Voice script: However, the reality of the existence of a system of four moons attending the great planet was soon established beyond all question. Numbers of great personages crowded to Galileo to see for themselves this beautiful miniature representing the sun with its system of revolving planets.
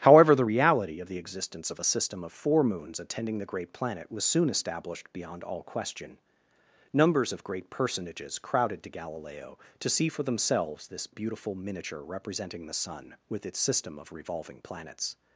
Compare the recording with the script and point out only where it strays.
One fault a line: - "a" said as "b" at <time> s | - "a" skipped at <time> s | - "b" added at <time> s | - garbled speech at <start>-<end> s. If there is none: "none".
none